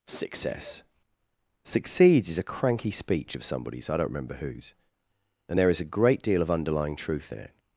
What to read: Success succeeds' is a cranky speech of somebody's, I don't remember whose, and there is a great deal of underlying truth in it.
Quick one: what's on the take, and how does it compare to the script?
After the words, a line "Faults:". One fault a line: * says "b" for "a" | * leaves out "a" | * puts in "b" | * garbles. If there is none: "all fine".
Success succeeds' is a cranky speech of somebody's, I don't remember whose, and there is a great deal of underlying truth in it.
Faults:
all fine